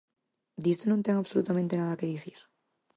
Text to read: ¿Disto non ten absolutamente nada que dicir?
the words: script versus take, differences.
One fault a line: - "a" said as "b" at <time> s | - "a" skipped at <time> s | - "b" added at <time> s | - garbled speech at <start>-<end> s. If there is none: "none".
none